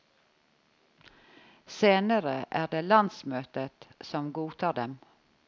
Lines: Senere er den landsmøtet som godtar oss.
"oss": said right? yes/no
no